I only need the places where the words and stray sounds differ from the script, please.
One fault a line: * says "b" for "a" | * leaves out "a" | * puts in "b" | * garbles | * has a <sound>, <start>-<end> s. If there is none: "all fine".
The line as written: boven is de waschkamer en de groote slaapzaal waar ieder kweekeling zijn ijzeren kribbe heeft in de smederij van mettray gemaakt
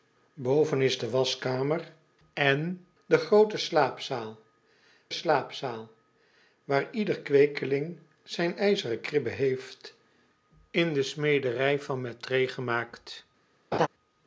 * puts in "slaapzaal"
* has a laugh, 13.7-13.9 s